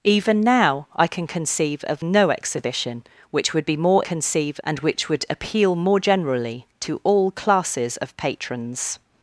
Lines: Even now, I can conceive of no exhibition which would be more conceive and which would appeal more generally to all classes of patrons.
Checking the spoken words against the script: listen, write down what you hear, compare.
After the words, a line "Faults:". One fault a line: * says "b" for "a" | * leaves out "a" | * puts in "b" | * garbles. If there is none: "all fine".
Even now, I can conceive of no exhibition which would be more conceive and which would appeal more generally to all classes of patrons.
Faults:
all fine